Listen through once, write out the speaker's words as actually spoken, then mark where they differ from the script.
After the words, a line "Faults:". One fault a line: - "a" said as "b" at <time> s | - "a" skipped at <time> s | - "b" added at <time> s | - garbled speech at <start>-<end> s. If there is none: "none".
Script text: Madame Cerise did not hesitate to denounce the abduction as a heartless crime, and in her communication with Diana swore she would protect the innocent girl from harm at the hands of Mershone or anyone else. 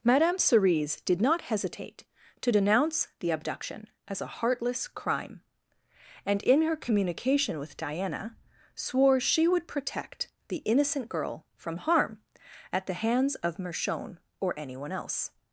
Madame Cerise did not hesitate to denounce the abduction as a heartless crime, and in her communication with Diana swore she would protect the innocent girl from harm at the hands of Mershone or anyone else.
Faults:
none